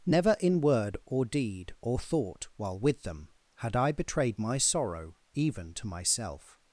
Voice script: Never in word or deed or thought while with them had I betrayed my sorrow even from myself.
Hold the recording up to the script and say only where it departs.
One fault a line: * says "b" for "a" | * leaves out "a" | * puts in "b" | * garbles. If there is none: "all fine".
* says "to" for "from"